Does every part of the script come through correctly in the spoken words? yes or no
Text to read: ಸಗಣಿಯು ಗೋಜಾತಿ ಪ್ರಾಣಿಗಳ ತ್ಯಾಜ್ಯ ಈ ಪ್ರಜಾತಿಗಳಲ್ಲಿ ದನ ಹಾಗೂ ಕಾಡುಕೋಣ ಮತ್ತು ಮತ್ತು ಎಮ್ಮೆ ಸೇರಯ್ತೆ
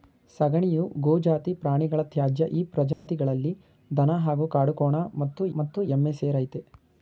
yes